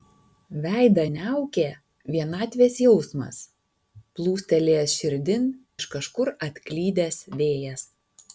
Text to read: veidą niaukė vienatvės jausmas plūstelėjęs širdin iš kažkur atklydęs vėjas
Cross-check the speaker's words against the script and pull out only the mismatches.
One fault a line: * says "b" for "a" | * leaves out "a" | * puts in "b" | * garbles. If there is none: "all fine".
all fine